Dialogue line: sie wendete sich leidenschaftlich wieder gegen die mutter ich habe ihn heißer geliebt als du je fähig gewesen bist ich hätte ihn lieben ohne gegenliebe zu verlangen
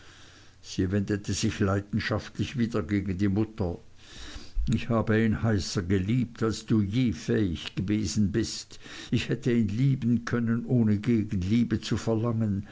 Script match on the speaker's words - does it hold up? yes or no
no